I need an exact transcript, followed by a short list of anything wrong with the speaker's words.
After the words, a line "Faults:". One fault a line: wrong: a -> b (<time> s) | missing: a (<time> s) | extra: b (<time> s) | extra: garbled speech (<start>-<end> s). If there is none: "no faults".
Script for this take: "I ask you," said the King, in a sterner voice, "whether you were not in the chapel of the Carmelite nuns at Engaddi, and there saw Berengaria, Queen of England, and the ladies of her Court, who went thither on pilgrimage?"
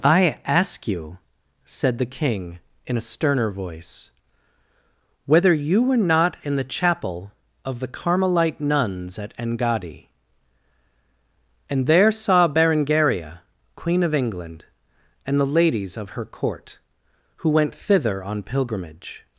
"I ask you," said the King, in a sterner voice, "whether you were not in the chapel of the Carmelite nuns at Engaddi, and there saw Berengaria, Queen of England, and the ladies of her Court, who went thither on pilgrimage?"
Faults:
no faults